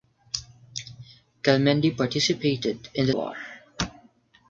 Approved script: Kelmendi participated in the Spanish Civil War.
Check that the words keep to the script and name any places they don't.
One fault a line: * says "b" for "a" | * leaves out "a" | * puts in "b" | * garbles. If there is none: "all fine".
* leaves out "Spanish Civil"